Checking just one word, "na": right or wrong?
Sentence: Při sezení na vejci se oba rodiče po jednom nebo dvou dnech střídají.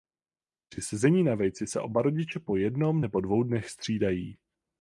right